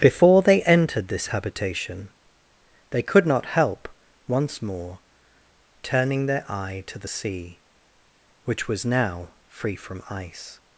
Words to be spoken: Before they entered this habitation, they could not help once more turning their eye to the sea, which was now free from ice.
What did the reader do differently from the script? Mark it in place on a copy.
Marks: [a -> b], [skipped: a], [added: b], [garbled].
Before they entered this habitation, they could not help once more turning their eye to the sea, which was now free from ice.